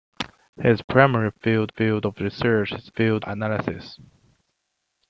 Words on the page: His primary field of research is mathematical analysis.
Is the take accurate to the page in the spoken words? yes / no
no